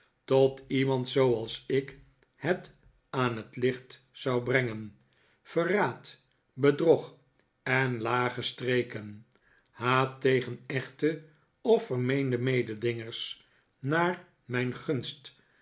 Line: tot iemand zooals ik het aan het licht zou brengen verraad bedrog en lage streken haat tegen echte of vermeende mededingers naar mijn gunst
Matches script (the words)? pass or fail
pass